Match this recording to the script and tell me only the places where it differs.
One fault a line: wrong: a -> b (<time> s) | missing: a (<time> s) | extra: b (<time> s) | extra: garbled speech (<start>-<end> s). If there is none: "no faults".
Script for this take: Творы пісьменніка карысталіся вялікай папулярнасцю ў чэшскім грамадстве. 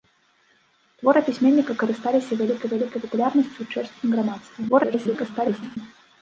extra: вялікай (2.7 s)
extra: garbled speech (4.7-5.8 s)